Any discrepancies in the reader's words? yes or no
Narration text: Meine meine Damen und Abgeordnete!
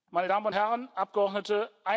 yes